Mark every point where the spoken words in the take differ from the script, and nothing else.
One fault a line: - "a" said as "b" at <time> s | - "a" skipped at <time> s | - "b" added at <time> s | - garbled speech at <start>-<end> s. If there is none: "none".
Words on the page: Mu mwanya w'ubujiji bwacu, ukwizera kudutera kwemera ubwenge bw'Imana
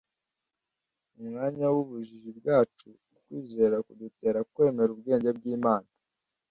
none